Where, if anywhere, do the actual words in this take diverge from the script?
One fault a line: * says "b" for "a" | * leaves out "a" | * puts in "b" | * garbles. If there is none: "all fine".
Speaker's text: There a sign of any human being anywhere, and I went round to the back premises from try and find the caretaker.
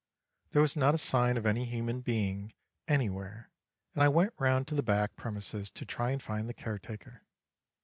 * puts in "was not"
* says "to" for "from"